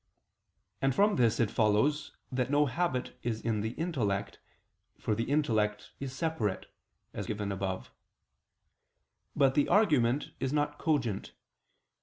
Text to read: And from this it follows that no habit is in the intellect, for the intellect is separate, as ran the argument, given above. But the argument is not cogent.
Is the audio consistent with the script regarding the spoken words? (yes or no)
no